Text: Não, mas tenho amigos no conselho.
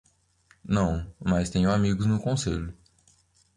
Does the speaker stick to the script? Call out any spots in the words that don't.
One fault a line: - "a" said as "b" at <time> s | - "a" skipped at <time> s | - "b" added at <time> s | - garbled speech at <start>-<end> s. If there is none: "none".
none